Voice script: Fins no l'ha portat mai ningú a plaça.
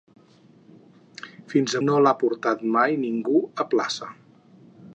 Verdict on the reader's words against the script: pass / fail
pass